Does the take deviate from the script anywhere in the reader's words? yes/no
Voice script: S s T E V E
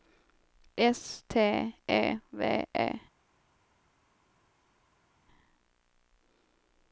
yes